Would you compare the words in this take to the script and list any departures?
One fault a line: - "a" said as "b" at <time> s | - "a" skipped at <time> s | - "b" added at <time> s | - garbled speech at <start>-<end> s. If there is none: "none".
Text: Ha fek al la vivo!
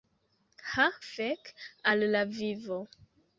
none